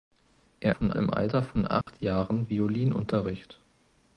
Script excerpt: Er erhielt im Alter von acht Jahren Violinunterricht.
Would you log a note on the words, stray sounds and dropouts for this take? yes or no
yes